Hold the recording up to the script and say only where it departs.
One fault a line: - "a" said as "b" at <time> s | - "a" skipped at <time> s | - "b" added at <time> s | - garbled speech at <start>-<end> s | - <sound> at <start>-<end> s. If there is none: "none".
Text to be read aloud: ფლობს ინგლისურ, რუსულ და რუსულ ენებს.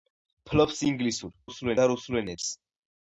none